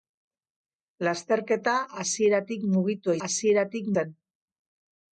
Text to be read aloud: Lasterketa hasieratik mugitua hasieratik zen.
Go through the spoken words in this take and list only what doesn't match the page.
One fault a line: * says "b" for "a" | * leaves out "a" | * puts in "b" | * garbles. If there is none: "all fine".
all fine